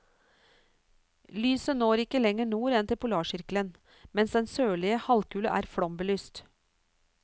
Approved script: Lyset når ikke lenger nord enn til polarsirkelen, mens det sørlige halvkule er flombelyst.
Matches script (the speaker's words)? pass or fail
fail